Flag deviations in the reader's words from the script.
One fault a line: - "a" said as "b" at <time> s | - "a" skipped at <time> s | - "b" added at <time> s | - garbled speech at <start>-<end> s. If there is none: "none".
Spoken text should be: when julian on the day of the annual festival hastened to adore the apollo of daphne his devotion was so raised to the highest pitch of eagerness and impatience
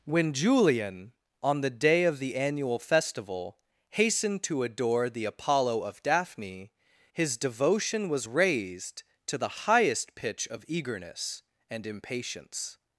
- "so" skipped at 8.3 s